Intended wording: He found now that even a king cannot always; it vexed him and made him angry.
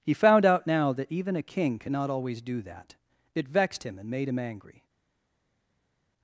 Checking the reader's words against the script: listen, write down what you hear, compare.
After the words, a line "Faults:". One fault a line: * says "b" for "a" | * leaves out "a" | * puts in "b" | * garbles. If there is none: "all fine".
He found out now that even a king cannot always do that; it vexed him and made him angry.
Faults:
* puts in "out"
* puts in "do that"